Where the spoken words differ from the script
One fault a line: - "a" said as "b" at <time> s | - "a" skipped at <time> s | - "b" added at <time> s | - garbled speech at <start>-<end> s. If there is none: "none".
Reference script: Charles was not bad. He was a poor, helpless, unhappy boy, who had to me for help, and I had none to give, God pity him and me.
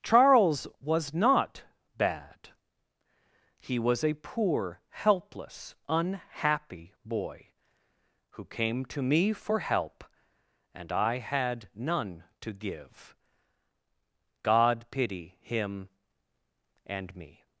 - "had" said as "came" at 8.4 s